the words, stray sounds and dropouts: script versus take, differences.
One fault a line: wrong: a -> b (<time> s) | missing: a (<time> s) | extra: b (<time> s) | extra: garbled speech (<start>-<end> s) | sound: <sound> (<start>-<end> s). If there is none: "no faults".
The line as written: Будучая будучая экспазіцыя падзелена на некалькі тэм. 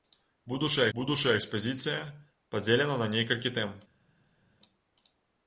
no faults